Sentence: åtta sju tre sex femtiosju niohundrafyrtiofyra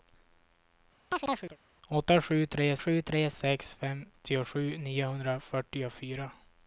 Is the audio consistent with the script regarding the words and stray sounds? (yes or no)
no